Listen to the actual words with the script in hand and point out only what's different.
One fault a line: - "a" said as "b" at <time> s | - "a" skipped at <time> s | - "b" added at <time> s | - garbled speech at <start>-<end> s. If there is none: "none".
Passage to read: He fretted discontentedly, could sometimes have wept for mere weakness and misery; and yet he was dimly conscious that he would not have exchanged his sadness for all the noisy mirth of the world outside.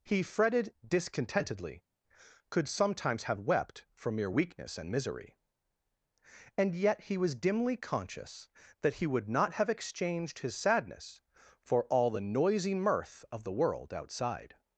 none